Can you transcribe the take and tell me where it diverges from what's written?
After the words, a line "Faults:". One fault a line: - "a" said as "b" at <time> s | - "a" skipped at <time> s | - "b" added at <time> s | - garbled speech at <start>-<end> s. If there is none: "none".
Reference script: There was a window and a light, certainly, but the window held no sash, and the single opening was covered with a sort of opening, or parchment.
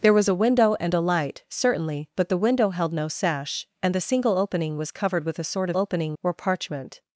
There was a window and a light, certainly, but the window held no sash, and the single opening was covered with a sort of opening, or parchment.
Faults:
none